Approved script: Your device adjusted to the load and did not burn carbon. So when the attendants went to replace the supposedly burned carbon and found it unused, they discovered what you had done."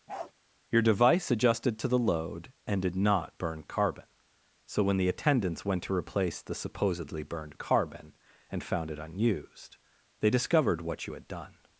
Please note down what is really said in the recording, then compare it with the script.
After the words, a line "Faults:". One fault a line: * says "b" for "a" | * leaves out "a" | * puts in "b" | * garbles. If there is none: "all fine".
Your device adjusted to the load and did not burn carbon. So when the attendants went to replace the supposedly burned carbon and found it unused, they discovered what you had done."
Faults:
all fine